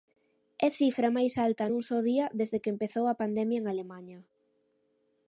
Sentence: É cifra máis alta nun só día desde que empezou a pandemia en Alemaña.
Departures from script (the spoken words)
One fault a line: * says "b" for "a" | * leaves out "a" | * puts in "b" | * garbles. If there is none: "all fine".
all fine